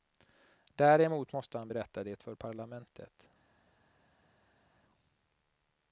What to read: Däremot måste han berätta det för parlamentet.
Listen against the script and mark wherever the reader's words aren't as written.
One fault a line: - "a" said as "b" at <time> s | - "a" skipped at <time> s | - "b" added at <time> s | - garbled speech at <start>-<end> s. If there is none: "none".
none